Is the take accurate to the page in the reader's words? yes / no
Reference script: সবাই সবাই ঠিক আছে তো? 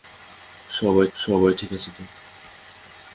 yes